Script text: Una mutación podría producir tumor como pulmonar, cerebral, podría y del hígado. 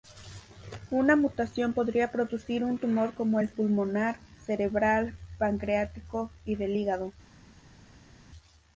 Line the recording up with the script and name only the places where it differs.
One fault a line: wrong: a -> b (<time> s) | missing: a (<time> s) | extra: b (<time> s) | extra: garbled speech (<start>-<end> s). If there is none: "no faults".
extra: un (2.6 s)
extra: el (3.4 s)
wrong: podría -> pancreático (5.4 s)